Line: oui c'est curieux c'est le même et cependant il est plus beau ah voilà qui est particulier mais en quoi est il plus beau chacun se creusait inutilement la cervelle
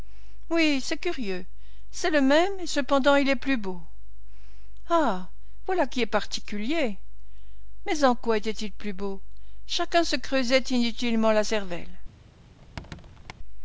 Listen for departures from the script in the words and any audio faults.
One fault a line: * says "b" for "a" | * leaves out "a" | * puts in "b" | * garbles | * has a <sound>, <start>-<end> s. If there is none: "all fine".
* says "était" for "est"
* has a squeak, 12.6-13.3 s